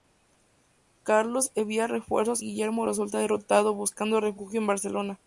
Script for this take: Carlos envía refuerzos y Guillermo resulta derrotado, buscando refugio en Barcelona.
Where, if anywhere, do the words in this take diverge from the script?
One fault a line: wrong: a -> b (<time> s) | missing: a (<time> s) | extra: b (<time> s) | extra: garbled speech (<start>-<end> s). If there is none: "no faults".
missing: y (2.4 s)